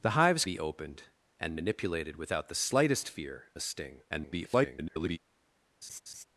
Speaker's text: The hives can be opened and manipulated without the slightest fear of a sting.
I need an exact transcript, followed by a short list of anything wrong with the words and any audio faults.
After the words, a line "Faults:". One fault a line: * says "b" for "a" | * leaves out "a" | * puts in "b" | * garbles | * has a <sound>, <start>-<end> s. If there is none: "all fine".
The hives be opened and manipulated without the slightest fear a sting. [garbled]
Faults:
* leaves out "can"
* leaves out "of"
* garbles
* has a laugh, 5.8-6.2 s